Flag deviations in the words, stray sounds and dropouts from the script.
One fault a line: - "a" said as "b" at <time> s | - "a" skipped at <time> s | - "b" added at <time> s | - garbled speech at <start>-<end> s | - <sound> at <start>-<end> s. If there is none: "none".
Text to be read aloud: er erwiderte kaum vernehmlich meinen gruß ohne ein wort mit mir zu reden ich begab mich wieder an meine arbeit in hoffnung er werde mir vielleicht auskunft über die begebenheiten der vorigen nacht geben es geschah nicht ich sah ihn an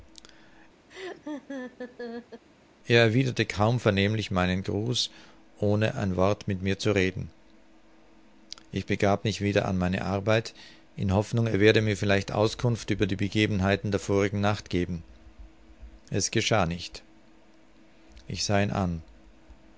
- laugh at 0.9-2.4 s